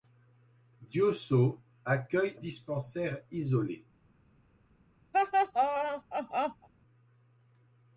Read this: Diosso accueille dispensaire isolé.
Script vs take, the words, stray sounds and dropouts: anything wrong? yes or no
yes